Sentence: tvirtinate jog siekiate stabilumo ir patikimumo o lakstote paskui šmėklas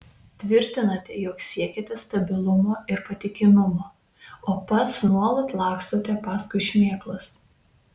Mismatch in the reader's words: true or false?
true